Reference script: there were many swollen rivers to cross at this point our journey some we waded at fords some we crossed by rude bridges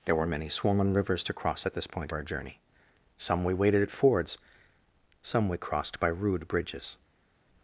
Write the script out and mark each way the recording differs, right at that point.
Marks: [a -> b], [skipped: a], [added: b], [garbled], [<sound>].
there were many swollen rivers to cross at this point our journey some we waded at fords some we crossed by rude bridges